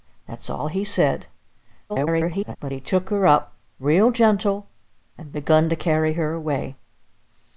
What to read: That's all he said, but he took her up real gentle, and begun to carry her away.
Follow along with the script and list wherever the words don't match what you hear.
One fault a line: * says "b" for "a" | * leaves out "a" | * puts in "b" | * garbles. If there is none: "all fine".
* garbles